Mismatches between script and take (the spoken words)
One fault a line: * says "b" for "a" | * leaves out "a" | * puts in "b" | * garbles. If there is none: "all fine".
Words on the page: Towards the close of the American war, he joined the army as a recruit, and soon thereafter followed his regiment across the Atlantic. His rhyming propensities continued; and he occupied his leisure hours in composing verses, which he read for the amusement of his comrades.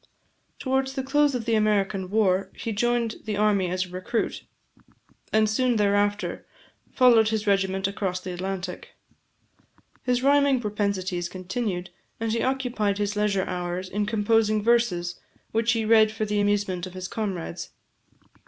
all fine